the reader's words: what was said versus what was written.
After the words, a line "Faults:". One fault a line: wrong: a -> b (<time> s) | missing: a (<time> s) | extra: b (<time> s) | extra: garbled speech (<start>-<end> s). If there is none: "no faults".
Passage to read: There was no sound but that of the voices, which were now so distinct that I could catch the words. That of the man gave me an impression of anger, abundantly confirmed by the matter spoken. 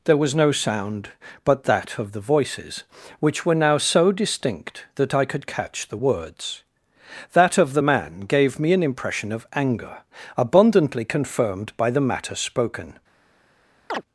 There was no sound but that of the voices, which were now so distinct that I could catch the words. That of the man gave me an impression of anger, abundantly confirmed by the matter spoken.
Faults:
no faults